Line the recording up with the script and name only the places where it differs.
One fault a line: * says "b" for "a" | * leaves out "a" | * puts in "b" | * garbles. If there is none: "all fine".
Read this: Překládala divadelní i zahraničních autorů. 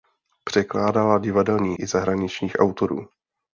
all fine